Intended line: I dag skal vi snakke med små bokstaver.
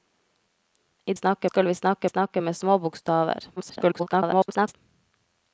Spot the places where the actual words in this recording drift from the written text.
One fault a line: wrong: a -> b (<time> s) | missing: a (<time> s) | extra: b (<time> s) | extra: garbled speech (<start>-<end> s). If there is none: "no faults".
wrong: dag -> snakke (1.1 s)
extra: snakke (2.1 s)
extra: garbled speech (3.6-4.8 s)